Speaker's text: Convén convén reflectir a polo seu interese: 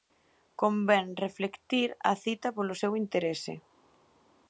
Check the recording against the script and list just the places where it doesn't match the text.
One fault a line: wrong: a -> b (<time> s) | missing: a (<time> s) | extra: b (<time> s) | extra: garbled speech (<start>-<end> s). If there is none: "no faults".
missing: convén (1.1 s)
extra: cita (2.2 s)